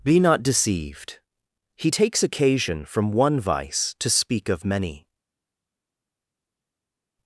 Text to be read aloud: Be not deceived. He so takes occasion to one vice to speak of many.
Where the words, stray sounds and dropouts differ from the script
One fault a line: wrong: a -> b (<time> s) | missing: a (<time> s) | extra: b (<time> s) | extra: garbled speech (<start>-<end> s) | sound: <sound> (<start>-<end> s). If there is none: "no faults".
missing: so (1.9 s)
wrong: to -> from (2.8 s)